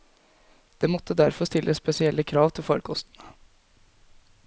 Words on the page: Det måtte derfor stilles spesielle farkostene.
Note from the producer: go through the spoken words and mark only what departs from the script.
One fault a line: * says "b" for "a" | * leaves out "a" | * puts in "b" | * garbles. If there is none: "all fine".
* puts in "krav til"